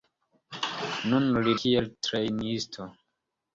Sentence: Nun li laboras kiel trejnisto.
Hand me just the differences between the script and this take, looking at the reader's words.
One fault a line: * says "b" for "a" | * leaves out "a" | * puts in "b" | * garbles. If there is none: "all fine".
* leaves out "laboras"